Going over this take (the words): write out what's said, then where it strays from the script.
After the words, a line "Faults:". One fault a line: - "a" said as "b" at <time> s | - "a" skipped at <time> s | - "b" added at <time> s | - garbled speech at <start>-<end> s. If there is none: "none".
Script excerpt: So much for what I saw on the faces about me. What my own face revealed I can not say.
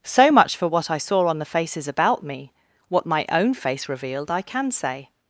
So much for what I saw on the faces about me. What my own face revealed I can say.
Faults:
- "not" skipped at 4.7 s